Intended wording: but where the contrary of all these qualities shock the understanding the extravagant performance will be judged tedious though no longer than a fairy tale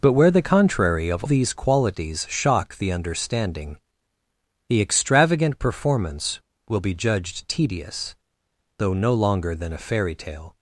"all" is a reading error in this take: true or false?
true